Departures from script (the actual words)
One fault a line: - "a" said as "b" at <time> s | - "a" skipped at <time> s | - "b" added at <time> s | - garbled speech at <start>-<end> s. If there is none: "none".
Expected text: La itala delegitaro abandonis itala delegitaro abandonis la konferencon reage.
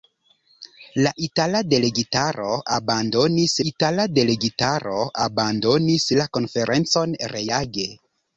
none